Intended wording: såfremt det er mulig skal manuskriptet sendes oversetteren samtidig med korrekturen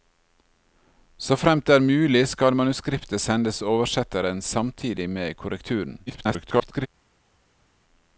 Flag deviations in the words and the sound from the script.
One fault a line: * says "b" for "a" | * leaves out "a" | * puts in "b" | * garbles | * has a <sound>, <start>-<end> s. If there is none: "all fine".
* garbles